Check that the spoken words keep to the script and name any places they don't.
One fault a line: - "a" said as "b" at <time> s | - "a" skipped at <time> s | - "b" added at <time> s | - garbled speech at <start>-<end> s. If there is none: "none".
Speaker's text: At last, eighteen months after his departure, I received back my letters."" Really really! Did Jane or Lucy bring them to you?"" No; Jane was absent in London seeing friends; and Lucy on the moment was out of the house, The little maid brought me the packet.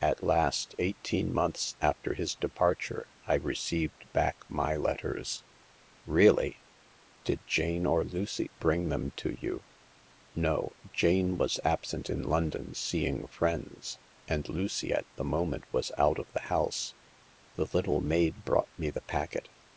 - "really" skipped at 6.7 s
- "on" said as "at" at 14.9 s